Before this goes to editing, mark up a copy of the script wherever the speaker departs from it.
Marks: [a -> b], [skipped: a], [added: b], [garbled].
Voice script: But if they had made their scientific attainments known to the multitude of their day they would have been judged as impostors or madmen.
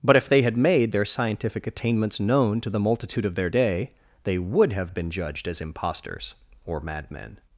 But if they had made their scientific attainments known to the multitude of their day they would have been judged as impostors or madmen.